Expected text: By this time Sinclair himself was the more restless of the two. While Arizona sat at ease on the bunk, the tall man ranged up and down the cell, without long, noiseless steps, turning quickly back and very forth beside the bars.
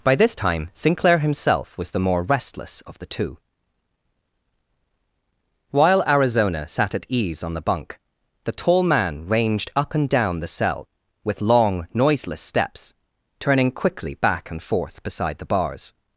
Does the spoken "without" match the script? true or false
false